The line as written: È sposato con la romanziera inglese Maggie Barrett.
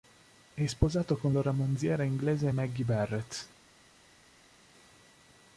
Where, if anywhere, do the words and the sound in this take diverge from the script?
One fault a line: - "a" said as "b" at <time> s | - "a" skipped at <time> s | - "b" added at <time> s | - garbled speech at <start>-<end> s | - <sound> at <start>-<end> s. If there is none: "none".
none